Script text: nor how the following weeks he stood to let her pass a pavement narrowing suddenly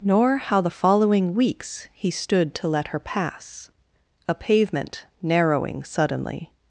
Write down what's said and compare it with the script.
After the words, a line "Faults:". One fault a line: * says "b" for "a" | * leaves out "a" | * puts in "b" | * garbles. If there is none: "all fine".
nor how the following weeks he stood to let her pass a pavement narrowing suddenly
Faults:
all fine